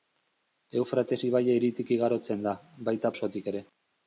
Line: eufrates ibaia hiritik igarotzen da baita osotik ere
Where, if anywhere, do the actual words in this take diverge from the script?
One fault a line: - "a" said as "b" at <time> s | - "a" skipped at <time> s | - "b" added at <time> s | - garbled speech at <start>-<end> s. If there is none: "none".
none